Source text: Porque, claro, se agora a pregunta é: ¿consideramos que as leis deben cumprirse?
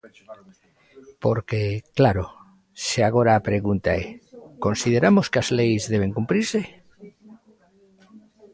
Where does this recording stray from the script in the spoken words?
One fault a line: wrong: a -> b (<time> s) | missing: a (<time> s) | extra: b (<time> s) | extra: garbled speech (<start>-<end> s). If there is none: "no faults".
no faults